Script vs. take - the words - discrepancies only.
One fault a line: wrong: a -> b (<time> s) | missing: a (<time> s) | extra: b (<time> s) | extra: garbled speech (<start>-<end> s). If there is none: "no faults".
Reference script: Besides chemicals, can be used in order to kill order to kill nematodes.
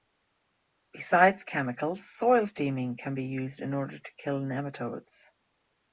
extra: soil steaming (2.0 s)
missing: order to kill (4.4 s)